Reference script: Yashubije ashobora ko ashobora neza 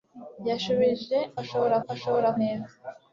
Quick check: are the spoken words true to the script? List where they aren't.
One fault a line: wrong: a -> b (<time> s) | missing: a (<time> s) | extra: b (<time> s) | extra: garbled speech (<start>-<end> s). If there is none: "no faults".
no faults